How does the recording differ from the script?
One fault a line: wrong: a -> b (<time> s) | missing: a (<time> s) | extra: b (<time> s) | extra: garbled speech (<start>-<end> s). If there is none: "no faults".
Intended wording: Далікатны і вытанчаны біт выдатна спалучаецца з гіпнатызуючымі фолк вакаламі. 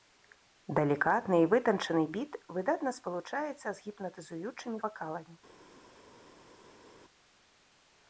missing: фолк (4.8 s)